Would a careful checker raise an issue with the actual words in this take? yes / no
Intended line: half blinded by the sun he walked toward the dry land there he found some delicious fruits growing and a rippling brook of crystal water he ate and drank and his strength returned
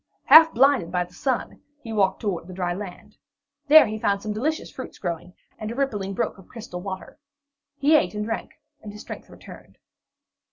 no